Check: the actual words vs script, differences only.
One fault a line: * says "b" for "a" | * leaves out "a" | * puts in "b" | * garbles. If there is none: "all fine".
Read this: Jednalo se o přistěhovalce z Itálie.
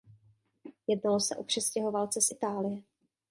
all fine